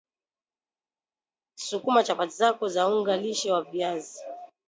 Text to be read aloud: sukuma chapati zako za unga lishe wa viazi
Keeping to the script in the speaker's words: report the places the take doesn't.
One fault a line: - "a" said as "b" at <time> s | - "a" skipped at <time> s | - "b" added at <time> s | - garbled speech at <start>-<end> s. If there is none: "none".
none